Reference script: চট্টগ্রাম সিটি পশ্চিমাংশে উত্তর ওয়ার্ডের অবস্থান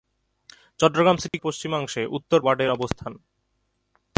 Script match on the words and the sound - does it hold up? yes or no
no